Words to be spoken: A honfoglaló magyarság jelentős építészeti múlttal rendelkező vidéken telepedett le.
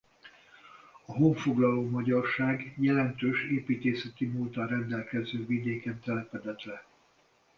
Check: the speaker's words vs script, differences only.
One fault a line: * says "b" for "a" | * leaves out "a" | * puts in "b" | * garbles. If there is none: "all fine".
all fine